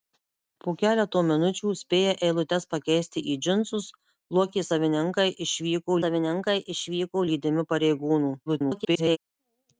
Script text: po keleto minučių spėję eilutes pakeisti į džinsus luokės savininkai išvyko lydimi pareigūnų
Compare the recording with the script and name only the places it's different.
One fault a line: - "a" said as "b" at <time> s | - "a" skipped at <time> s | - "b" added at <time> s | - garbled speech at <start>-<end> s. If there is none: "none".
- "savininkai išvyko" added at 6.0 s
- garbled speech at 8.5-9.2 s